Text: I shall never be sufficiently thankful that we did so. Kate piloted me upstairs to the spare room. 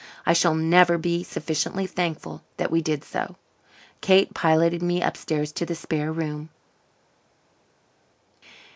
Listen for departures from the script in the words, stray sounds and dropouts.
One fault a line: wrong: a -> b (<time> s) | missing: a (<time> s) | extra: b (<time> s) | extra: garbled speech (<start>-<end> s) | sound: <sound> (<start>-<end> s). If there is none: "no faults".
no faults